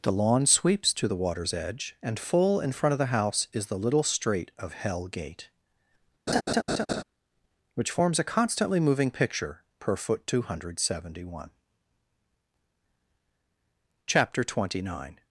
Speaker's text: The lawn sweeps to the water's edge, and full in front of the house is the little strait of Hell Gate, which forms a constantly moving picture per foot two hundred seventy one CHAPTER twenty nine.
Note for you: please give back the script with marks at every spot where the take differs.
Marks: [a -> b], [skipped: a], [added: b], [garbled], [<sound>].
The lawn sweeps to the water's edge, and full in front of the house is the little strait of Hell Gate, [laugh] which forms a constantly moving picture per foot two hundred seventy one CHAPTER twenty nine.